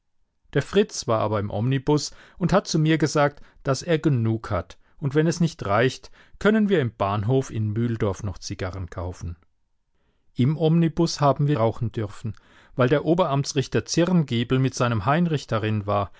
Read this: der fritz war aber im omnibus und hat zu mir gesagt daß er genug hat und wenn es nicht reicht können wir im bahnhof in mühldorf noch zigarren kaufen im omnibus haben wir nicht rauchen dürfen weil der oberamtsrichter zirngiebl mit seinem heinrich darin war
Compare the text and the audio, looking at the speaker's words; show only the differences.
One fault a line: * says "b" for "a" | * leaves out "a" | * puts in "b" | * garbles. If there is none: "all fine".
* leaves out "nicht"